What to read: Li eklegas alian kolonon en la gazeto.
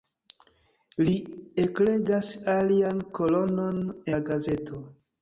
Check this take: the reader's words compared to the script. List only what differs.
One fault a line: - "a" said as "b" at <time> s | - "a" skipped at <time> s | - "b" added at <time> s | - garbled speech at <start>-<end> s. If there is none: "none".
- "en" skipped at 3.8 s